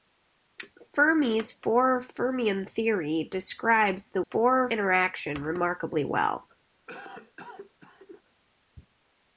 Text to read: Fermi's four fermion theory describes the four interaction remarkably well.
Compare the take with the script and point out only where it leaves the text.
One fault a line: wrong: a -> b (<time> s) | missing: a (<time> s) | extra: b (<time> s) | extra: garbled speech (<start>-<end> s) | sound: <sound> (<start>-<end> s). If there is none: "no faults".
sound: cough (6.9-8.2 s)